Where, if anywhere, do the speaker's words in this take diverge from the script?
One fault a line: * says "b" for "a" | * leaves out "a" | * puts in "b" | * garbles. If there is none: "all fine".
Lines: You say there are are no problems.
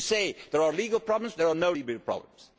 * puts in "legal problems there"
* puts in "legal"